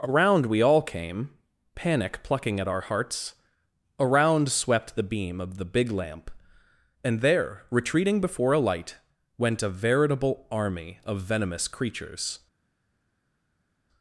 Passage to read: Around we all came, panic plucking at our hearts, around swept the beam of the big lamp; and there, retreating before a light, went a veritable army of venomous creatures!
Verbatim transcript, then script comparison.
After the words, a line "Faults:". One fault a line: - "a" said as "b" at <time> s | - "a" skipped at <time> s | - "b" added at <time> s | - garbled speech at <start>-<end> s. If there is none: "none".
Around we all came, panic plucking at our hearts, around swept the beam of the big lamp; and there, retreating before a light, went a veritable army of venomous creatures!
Faults:
none